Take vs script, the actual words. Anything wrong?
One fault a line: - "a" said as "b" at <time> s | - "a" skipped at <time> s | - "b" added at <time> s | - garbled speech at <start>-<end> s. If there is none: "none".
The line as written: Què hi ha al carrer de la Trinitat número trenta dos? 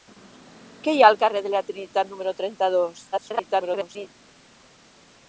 - garbled speech at 3.1-4.1 s